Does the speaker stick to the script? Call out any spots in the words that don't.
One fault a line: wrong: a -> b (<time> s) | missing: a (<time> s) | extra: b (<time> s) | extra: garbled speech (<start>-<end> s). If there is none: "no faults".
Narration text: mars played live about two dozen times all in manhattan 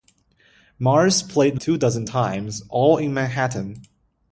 missing: live about (1.6 s)